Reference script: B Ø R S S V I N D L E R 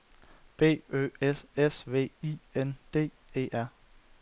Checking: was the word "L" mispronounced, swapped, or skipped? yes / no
yes